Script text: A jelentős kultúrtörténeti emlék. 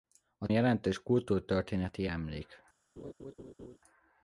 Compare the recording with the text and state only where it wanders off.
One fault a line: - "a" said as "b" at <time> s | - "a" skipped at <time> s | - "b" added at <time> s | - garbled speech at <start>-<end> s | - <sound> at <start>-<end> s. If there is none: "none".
- laugh at 3.0-3.8 s